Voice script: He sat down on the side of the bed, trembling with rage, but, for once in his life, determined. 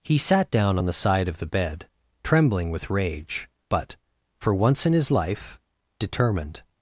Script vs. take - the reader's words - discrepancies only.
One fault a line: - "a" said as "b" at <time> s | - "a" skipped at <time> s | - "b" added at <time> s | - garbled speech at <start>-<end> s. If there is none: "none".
none